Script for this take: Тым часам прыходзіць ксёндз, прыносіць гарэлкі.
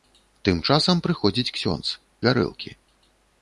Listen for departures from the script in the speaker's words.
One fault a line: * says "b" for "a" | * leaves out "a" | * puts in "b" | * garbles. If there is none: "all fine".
* leaves out "прыносіць"